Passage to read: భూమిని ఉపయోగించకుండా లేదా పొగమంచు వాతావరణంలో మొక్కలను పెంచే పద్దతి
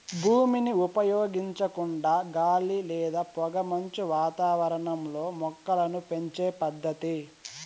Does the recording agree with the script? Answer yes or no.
no